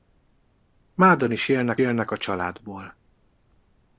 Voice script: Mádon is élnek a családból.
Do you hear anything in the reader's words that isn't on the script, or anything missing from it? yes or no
yes